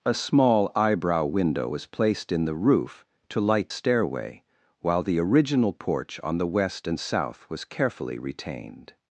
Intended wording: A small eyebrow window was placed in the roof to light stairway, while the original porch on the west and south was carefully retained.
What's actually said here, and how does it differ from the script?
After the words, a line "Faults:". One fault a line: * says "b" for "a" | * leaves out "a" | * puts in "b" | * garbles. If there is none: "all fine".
A small eyebrow window was placed in the roof to light stairway, while the original porch on the west and south was carefully retained.
Faults:
all fine